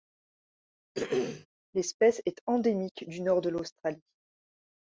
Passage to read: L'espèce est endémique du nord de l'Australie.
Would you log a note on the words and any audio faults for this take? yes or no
yes